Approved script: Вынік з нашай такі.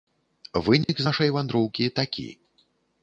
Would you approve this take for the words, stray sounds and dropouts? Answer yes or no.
no